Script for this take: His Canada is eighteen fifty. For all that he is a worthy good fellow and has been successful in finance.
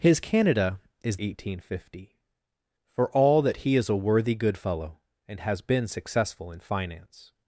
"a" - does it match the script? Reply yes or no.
yes